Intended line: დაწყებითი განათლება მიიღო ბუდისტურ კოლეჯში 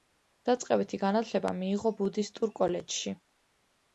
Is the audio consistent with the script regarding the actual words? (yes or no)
yes